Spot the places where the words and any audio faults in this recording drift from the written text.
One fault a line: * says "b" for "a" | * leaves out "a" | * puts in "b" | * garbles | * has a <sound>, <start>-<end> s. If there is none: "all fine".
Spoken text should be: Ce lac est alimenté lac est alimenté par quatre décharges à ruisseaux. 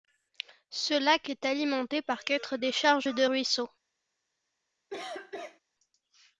* leaves out "lac est alimenté"
* says "de" for "à"
* has a cough, 4.9-5.6 s